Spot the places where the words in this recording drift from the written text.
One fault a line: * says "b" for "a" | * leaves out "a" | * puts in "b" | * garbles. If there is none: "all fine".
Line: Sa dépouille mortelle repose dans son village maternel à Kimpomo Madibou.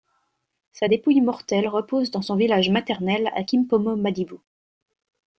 all fine